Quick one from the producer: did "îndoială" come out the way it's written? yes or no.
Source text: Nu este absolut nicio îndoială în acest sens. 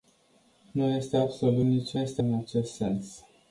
no